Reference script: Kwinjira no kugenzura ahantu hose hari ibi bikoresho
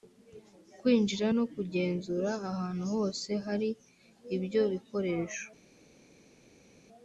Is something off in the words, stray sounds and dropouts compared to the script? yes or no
yes